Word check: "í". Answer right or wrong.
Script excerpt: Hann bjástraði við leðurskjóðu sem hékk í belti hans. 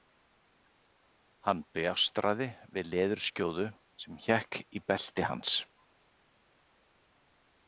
right